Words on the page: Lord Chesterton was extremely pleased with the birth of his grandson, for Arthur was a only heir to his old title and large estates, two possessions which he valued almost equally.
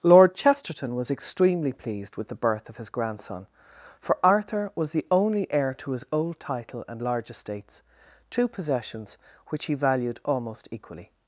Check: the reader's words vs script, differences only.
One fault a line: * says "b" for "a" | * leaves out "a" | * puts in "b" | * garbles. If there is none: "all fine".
* says "the" for "a"